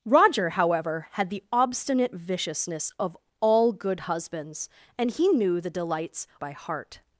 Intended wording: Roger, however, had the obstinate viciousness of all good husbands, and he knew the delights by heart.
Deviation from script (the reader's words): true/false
false